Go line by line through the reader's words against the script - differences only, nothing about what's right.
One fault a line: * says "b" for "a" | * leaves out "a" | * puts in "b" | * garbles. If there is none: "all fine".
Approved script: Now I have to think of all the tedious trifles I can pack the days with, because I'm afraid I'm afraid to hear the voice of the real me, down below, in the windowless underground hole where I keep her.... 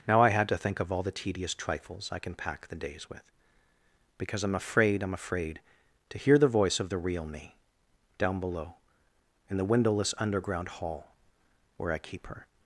* says "had" for "have"
* says "hall" for "hole"